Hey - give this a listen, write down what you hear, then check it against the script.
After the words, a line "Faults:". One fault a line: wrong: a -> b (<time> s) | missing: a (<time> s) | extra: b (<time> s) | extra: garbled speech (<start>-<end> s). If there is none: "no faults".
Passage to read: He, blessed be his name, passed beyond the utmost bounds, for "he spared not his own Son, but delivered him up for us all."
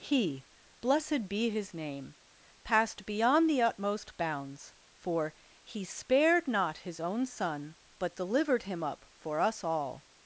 He, blessed be his name, passed beyond the utmost bounds, for "he spared not his own Son, but delivered him up for us all."
Faults:
no faults